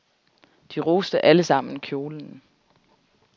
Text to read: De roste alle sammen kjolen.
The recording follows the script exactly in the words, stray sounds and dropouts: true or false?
true